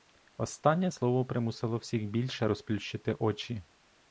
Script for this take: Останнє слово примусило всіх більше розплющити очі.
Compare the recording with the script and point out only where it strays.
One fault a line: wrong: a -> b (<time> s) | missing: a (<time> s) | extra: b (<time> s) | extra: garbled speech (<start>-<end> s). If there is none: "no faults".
no faults